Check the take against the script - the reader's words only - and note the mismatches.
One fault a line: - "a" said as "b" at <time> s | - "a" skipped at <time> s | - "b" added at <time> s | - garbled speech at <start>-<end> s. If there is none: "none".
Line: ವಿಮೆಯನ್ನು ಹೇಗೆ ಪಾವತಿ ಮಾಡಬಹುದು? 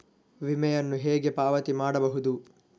none